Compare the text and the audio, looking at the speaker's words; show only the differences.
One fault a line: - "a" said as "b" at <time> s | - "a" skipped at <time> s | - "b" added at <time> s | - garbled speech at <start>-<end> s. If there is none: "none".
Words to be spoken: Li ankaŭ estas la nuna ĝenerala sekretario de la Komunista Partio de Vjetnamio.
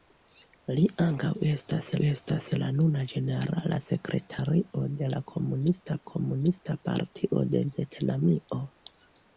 - "estas" added at 2.1 s
- "Komunista" added at 6.1 s